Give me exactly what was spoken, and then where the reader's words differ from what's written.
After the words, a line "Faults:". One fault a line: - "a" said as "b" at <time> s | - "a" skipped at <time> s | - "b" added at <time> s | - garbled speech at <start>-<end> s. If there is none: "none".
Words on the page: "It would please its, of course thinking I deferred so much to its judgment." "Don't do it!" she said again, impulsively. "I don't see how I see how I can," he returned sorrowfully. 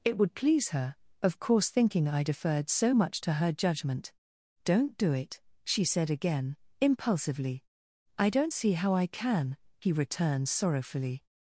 "It would please her, of course thinking I deferred so much to her judgment." "Don't do it!" she said again, impulsively. "I don't see how I can," he returned sorrowfully.
Faults:
- "its" said as "her" at 0.7 s
- "its" said as "her" at 3.3 s
- "see how I" skipped at 9.1 s